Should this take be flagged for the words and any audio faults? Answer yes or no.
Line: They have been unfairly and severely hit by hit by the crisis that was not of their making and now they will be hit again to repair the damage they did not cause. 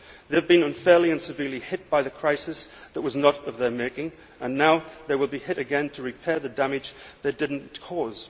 yes